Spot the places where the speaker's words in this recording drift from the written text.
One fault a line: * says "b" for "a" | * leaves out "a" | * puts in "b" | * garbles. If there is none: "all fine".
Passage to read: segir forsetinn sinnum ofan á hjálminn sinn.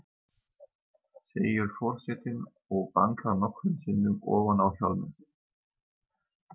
* puts in "og bankar nokkrum"